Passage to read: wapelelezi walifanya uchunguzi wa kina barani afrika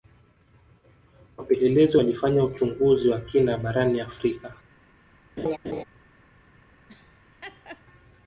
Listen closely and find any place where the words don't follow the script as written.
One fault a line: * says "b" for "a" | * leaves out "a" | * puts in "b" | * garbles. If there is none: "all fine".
all fine